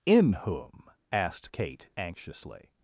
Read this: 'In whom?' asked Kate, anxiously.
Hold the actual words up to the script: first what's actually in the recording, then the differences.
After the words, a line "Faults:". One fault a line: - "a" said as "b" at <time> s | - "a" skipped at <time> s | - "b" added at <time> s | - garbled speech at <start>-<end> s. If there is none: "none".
'In whom?' asked Kate, anxiously.
Faults:
none